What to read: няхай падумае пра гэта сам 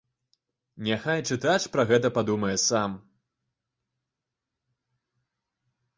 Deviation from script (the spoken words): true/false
true